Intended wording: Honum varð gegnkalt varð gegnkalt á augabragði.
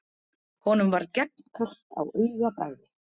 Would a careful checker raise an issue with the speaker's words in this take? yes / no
yes